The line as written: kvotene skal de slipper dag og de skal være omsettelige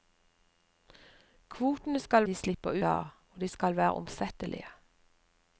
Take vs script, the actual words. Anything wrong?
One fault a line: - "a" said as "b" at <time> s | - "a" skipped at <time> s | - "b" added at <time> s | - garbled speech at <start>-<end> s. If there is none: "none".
none